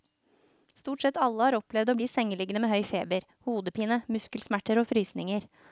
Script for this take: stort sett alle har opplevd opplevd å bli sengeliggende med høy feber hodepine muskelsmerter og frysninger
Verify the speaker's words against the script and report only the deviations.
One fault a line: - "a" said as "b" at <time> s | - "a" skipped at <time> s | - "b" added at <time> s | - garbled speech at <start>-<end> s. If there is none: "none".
- "opplevd" skipped at 1.9 s